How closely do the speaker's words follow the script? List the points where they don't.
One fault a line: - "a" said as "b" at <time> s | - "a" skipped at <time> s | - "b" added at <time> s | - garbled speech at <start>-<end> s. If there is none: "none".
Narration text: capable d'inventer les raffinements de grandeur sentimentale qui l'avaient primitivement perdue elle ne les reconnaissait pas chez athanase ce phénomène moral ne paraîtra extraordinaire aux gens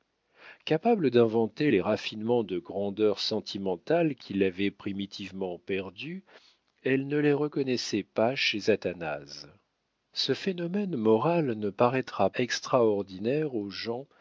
none